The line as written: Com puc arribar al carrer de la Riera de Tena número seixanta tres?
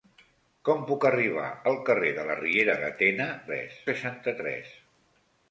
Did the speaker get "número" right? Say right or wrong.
wrong